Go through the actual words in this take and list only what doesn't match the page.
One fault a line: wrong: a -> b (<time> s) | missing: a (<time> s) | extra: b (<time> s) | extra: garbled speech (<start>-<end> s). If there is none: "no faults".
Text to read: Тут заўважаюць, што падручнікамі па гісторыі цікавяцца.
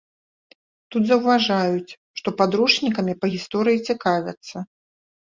no faults